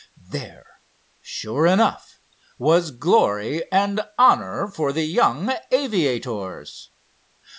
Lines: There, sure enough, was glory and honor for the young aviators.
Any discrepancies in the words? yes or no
no